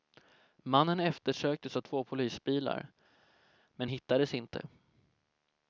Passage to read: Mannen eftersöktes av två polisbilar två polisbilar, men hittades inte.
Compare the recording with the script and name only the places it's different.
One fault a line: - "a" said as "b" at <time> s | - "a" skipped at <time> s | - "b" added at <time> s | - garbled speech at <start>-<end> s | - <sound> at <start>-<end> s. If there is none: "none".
- "två polisbilar" skipped at 2.9 s